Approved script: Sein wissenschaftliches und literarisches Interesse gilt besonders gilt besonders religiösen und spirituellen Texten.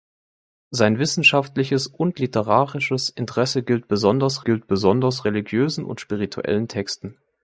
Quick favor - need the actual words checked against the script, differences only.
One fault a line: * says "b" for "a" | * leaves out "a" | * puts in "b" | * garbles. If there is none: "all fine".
all fine